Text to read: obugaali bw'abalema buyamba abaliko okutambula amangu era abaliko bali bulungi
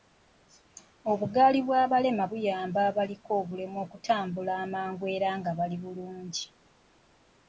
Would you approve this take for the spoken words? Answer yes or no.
no